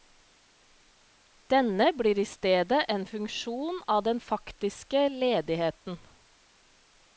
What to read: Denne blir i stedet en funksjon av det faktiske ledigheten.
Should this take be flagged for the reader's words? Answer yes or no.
yes